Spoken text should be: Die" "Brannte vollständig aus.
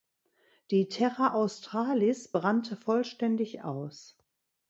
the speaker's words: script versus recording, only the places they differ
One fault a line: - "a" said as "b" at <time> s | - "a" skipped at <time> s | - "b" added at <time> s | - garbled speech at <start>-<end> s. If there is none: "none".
- "Terra Australis" added at 0.9 s